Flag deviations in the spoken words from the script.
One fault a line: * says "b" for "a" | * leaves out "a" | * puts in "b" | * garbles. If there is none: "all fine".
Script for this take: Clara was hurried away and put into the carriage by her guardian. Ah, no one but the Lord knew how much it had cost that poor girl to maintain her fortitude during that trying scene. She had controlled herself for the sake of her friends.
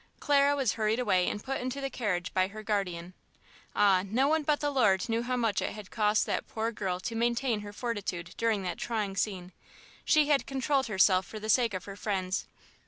all fine